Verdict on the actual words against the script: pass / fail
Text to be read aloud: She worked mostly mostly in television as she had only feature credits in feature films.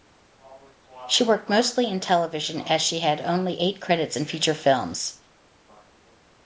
fail